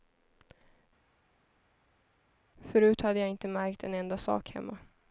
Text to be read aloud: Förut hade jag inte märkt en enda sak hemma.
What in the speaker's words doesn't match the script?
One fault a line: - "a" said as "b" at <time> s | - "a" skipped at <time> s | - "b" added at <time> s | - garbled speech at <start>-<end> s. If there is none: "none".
none